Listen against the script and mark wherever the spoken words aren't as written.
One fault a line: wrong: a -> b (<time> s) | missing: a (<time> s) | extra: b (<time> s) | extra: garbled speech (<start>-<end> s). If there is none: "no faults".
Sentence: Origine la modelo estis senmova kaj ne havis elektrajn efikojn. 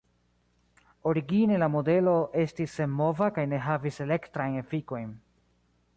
no faults